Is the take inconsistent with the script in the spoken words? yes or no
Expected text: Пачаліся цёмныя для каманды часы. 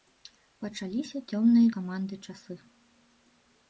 yes